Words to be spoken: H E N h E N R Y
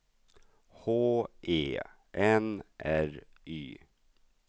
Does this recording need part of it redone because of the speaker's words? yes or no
yes